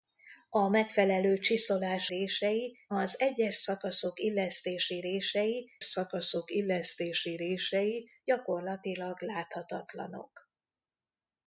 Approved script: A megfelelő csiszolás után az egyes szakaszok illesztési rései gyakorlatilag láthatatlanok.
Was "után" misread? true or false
true